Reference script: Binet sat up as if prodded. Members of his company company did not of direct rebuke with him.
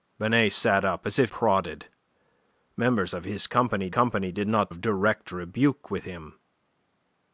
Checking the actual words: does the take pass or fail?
pass